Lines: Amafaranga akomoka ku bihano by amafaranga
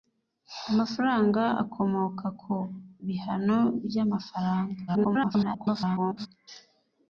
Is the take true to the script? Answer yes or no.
no